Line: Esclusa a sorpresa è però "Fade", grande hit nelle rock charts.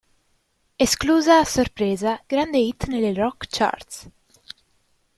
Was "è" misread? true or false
true